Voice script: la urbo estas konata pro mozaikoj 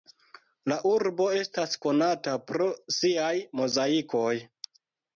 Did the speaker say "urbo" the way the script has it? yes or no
yes